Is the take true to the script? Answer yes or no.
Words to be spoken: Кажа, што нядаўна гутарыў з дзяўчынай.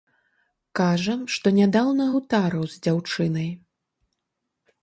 yes